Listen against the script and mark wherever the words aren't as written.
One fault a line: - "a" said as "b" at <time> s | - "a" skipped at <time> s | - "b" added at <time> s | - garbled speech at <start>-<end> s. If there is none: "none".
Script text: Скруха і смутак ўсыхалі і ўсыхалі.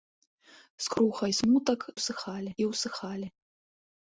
none